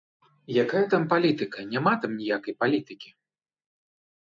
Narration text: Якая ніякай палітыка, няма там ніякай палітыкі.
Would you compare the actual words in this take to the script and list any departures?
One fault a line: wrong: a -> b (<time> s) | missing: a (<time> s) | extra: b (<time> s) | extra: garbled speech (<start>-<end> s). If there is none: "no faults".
wrong: ніякай -> там (0.9 s)